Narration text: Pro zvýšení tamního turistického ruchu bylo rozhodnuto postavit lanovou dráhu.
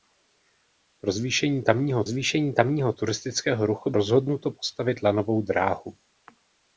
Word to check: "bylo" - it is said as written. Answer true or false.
false